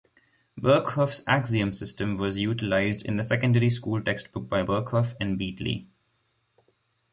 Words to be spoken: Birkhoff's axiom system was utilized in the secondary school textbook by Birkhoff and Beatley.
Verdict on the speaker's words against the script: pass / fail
pass